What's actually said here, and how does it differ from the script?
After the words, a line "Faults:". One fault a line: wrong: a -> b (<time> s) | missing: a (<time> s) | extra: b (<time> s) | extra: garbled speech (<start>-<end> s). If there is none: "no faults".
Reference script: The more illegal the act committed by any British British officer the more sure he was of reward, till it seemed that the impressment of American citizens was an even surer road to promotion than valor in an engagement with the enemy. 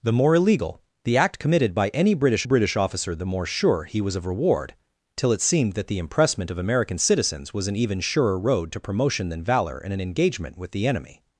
The more illegal the act committed by any British British officer the more sure he was of reward, till it seemed that the impressment of American citizens was an even surer road to promotion than valor in an engagement with the enemy.
Faults:
no faults